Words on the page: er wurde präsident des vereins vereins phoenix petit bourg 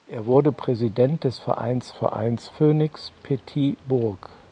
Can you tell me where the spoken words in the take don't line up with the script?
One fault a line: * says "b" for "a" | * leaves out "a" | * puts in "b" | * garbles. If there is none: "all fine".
all fine